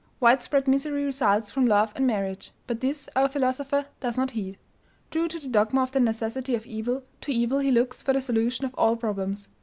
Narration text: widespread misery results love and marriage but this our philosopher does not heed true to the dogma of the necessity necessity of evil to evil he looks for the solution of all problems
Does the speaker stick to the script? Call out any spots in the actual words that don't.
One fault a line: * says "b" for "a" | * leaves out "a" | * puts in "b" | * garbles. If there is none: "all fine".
* puts in "from"
* leaves out "necessity"